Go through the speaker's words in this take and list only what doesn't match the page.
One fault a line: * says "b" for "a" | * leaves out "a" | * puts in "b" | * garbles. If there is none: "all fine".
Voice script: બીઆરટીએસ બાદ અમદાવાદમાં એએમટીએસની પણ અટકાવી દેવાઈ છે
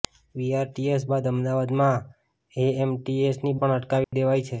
all fine